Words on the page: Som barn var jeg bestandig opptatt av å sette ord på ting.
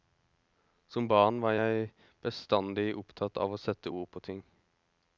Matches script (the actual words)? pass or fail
pass